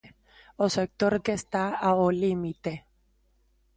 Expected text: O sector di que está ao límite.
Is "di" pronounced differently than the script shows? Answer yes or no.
yes